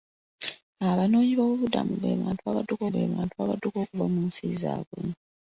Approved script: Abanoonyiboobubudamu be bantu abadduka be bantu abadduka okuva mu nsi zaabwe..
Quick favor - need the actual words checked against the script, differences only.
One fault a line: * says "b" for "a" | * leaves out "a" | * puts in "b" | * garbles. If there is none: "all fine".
all fine